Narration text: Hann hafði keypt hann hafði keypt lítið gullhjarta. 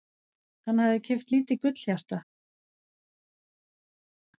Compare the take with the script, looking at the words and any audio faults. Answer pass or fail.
fail